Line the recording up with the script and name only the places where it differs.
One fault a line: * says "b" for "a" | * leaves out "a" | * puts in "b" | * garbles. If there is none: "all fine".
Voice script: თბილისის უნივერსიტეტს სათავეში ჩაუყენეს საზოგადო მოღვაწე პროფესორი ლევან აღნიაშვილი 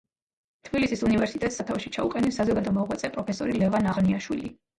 all fine